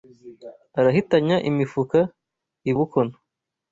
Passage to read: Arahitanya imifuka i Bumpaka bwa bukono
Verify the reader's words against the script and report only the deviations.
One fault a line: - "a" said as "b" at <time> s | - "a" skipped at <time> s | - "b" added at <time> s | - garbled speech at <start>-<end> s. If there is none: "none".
- "Bumpaka bwa" skipped at 2.7 s